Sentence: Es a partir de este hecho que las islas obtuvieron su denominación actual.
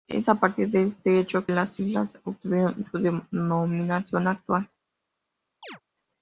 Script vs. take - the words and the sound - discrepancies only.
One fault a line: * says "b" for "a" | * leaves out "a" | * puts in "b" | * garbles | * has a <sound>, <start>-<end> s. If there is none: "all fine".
* leaves out "que"
* has a chirp, 5.6-5.8 s